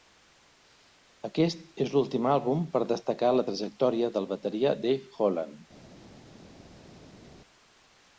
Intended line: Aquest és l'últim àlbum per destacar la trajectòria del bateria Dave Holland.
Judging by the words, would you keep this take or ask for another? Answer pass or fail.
pass